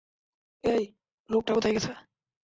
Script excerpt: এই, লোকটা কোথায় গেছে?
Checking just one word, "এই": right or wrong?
right